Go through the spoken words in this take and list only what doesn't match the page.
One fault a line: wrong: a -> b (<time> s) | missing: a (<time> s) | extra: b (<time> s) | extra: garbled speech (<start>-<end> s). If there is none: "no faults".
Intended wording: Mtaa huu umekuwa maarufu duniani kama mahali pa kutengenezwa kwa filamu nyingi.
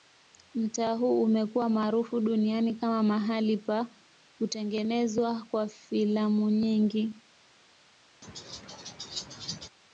no faults